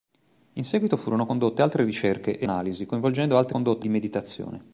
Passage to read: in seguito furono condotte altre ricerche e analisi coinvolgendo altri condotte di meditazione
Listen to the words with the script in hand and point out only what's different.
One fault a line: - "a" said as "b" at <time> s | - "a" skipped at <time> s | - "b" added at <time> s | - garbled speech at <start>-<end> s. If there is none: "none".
none